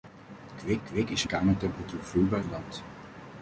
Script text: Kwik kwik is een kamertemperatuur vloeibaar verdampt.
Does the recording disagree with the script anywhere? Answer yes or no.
no